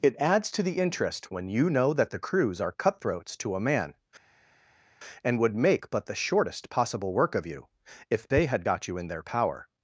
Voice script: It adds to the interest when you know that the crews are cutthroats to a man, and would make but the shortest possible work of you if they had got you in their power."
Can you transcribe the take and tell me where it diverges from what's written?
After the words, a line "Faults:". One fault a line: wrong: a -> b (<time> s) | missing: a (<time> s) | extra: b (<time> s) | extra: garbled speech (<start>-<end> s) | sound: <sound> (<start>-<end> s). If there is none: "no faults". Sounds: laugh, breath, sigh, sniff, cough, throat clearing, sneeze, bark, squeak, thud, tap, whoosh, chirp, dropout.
It adds to the interest when you know that the crews are cutthroats to a man, and would make but the shortest possible work of you if they had got you in their power."
Faults:
no faults